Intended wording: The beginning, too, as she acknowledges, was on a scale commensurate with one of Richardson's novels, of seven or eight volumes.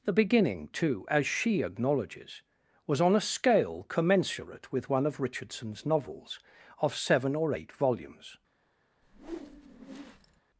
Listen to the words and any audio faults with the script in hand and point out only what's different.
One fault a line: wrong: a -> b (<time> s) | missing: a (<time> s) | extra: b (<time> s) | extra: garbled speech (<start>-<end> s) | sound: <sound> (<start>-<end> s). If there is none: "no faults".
sound: whoosh (9.0-10.4 s)